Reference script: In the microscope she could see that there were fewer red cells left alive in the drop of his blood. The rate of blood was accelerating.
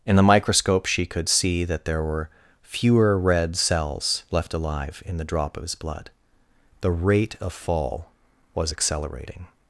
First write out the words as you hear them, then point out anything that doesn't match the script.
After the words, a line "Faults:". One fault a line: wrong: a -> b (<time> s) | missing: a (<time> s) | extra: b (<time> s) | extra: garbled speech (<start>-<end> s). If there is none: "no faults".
In the microscope she could see that there were fewer red cells left alive in the drop of his blood. The rate of fall was accelerating.
Faults:
wrong: blood -> fall (7.5 s)